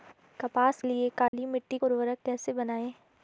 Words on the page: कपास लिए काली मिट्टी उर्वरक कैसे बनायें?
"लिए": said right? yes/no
yes